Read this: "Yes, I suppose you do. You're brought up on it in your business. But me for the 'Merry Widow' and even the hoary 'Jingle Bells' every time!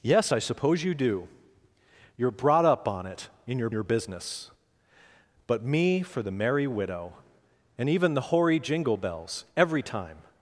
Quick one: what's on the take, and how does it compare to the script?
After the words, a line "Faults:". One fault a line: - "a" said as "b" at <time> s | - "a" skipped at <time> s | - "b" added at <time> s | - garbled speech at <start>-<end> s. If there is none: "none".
"Yes, I suppose you do. You're brought up on it in your your business. But me for the 'Merry Widow' and even the hoary 'Jingle Bells' every time!
Faults:
- "your" added at 3.7 s